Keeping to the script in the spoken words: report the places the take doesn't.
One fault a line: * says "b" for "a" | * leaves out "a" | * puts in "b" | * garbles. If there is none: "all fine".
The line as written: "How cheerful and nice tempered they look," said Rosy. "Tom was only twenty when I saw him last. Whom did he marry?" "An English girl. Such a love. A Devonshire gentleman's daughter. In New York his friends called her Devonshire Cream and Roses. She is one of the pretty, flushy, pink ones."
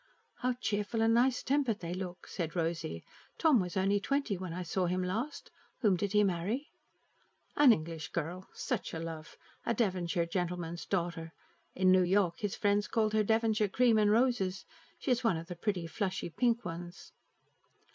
all fine